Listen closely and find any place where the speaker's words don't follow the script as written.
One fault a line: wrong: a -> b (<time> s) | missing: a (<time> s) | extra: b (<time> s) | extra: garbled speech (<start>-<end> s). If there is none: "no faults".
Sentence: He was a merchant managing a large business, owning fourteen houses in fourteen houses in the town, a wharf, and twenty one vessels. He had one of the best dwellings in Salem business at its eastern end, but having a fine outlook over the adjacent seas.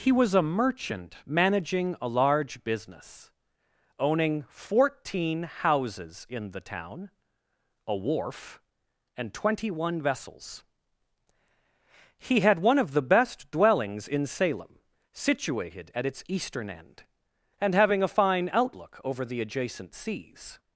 missing: fourteen houses in (6.5 s)
wrong: business -> situated (15.1 s)
wrong: but -> and (17.6 s)